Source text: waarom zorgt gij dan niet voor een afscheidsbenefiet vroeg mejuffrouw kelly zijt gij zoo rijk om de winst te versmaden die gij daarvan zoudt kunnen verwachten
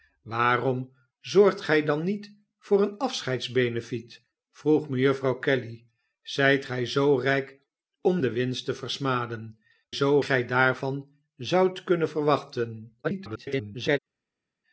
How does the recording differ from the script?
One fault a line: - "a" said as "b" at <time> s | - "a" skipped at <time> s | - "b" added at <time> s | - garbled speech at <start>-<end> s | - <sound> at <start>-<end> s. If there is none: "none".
- "die" said as "zoo" at 9.9 s
- garbled speech at 13.0-14.0 s